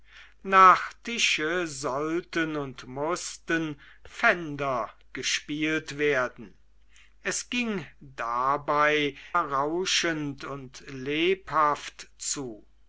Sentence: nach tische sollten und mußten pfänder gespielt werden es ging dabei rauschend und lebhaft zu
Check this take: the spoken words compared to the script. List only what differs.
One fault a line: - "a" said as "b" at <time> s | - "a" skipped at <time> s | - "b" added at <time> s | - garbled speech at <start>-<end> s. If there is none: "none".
none